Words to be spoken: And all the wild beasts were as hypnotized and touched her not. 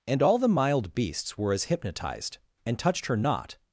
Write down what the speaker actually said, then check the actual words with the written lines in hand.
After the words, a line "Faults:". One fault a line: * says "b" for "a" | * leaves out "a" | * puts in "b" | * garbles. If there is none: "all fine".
And all the mild beasts were as hypnotized and touched her not.
Faults:
* says "mild" for "wild"